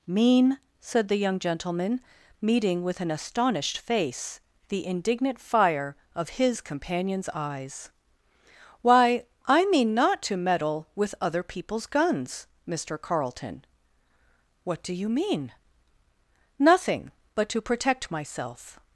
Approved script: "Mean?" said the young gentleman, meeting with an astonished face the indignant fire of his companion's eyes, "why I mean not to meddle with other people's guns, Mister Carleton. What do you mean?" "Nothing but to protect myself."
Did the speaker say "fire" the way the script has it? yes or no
yes